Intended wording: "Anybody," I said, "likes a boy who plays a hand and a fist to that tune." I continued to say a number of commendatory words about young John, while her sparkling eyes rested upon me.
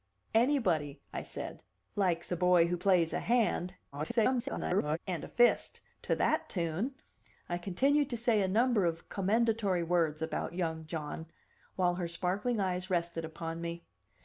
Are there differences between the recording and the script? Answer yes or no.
yes